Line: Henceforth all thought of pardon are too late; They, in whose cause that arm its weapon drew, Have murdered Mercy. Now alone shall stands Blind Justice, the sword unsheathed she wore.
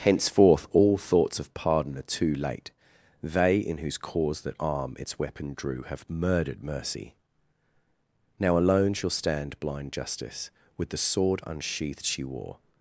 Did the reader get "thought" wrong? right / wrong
wrong